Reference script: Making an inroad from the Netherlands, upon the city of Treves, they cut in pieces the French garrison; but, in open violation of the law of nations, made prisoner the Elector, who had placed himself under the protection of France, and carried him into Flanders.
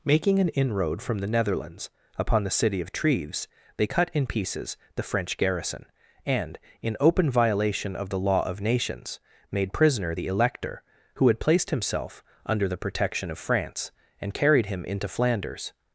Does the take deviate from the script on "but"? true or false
true